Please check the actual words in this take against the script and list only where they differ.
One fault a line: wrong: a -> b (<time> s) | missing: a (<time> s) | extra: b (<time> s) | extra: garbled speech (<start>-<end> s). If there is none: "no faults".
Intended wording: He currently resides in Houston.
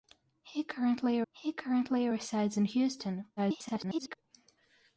extra: he currently (1.3 s)
extra: garbled speech (3.4-4.2 s)